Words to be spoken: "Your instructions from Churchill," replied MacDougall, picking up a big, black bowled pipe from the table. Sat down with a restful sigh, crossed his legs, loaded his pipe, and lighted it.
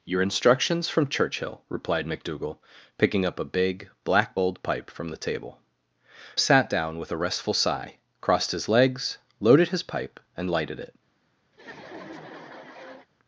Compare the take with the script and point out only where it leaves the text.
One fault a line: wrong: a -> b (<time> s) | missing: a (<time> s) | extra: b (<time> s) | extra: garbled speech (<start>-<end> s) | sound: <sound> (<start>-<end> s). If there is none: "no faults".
sound: laugh (11.5-13.1 s)